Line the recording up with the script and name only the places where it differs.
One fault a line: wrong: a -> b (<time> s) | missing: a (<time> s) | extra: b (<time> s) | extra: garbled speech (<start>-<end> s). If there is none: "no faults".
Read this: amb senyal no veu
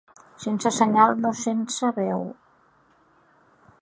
wrong: amb -> sense (0.4 s)
extra: sense (1.4 s)